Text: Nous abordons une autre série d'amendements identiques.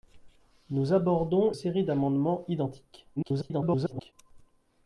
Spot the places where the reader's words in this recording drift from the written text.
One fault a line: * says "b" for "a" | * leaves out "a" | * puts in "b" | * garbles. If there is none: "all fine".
* leaves out "une autre"
* garbles